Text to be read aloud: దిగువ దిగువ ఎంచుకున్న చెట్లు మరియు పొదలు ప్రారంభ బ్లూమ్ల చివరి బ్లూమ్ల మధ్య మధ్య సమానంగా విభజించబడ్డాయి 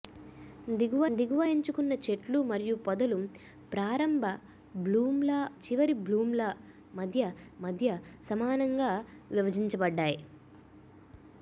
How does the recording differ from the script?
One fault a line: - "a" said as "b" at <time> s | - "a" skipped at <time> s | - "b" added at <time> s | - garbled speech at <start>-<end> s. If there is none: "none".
none